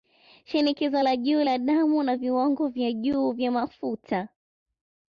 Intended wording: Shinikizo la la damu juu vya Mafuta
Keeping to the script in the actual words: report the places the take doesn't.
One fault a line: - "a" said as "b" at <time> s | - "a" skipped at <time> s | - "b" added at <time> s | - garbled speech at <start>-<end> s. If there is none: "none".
- "juu" added at 1.2 s
- "na Viwango vya" added at 2.0 s